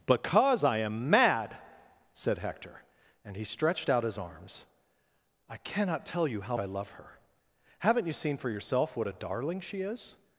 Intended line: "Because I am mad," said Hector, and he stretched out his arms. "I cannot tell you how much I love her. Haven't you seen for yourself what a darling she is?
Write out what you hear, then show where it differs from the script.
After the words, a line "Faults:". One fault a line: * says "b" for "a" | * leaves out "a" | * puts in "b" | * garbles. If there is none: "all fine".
"Because I am mad," said Hector, and he stretched out his arms. "I cannot tell you how I love her. Haven't you seen for yourself what a darling she is?
Faults:
* leaves out "much"